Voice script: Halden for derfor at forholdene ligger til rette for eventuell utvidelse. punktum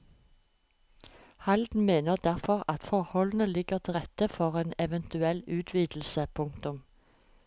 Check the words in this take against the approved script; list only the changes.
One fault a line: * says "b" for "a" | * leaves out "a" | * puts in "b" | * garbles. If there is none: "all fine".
* says "mener" for "for"
* puts in "en"